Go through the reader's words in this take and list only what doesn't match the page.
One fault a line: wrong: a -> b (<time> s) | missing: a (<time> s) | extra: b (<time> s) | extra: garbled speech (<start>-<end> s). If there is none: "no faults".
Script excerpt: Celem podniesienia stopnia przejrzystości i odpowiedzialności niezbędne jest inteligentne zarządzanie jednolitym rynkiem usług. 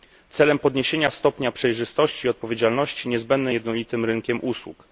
missing: jest inteligentne zarządzanie (3.5 s)